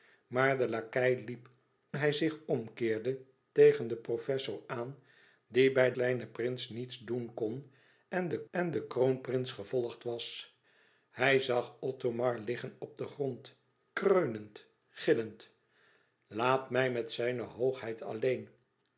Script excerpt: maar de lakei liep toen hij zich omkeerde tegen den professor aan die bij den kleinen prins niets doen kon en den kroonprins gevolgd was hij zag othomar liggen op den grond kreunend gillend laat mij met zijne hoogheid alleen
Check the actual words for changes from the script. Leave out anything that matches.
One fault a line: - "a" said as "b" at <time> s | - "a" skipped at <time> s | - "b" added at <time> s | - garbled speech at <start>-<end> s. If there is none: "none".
- "toen" skipped at 1.5 s
- "den" skipped at 5.9 s
- "en den" added at 8.5 s